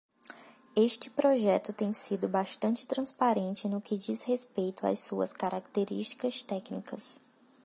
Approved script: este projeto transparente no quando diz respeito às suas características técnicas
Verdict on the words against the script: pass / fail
fail